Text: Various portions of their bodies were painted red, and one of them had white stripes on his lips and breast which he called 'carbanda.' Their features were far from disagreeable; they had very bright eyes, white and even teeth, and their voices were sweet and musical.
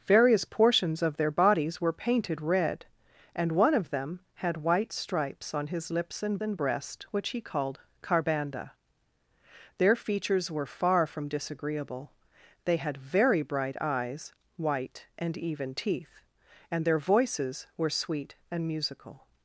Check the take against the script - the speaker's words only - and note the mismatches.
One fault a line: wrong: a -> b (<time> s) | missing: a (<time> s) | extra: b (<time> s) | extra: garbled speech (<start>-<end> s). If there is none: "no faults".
extra: and (6.4 s)